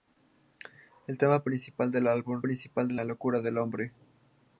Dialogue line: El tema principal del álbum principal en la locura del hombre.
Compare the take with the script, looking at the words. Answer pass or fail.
pass